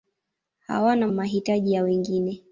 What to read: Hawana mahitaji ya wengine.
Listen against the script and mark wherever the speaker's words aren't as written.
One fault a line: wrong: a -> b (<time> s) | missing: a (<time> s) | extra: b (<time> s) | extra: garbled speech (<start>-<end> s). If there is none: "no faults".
no faults